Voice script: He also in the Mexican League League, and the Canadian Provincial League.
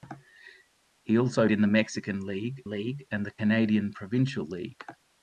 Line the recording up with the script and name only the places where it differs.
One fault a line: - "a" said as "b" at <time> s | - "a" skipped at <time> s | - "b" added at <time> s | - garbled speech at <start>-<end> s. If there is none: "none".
none